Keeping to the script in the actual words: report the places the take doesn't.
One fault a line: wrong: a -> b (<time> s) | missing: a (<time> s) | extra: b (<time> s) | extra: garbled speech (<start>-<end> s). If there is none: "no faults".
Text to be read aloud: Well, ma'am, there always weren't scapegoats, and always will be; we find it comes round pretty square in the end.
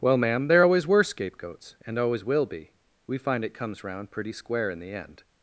wrong: weren't -> were (0.9 s)